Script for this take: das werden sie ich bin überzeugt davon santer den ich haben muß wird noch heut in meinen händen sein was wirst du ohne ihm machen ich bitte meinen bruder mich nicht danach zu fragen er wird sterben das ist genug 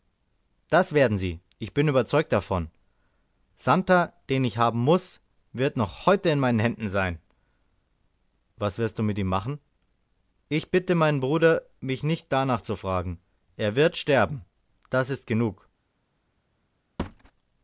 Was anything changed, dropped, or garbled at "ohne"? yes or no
yes